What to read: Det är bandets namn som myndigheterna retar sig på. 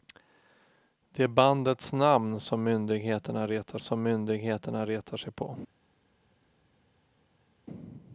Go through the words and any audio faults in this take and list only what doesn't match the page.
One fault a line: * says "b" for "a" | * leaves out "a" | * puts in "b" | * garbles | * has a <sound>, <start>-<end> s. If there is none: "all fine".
* puts in "som myndigheterna retar"